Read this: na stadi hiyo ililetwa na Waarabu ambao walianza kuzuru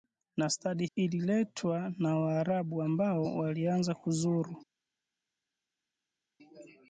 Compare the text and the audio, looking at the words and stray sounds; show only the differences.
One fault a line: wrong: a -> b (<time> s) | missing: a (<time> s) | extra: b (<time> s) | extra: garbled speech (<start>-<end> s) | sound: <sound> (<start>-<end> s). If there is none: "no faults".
missing: hiyo (0.8 s)